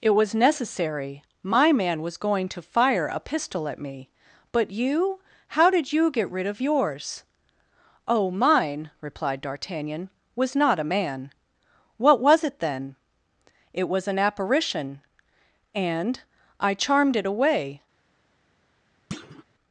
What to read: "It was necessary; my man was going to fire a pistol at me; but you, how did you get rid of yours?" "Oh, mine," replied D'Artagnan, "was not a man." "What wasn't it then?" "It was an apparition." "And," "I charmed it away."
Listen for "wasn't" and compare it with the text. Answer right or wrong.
wrong